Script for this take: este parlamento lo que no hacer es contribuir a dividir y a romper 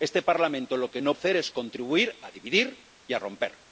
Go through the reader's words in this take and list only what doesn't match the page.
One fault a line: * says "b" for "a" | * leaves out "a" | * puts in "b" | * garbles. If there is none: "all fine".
all fine